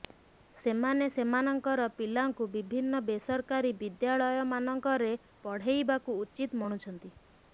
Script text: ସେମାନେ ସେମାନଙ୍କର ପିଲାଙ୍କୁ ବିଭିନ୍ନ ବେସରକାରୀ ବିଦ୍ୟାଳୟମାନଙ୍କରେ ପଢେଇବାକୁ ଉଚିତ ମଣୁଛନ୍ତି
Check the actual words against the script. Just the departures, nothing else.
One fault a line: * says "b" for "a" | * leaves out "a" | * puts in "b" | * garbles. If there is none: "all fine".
all fine